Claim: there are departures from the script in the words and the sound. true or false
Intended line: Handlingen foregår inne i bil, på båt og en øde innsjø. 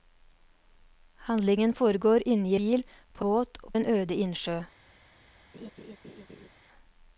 true